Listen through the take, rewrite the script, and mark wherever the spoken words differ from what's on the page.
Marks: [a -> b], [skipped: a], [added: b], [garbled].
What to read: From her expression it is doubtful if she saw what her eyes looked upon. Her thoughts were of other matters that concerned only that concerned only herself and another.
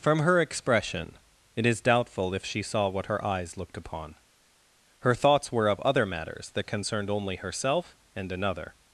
From her expression it is doubtful if she saw what her eyes looked upon. Her thoughts were of other matters that concerned only [skipped: that concerned only] herself and another.